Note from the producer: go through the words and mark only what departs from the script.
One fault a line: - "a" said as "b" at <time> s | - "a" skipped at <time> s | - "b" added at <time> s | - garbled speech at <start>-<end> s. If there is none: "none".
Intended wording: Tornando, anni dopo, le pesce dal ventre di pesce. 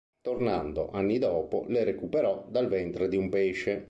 - "pesce" said as "recuperò" at 1.8 s
- "un" added at 3.2 s